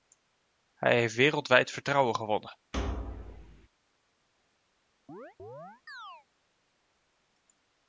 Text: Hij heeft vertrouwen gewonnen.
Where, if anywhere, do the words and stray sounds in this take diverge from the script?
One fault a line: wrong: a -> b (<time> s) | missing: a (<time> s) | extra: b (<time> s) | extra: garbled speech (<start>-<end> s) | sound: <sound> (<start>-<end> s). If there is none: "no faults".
extra: wereldwijd (1.1 s)
sound: thud (2.7-3.7 s)
sound: chirp (5.1-6.3 s)